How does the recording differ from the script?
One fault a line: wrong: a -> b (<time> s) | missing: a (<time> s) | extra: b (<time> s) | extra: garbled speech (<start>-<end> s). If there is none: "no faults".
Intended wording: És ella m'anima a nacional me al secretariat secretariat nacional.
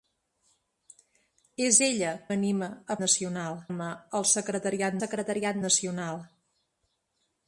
no faults